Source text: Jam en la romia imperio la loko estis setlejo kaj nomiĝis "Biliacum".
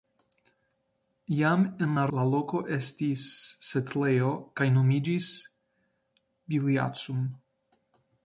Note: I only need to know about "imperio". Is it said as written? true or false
false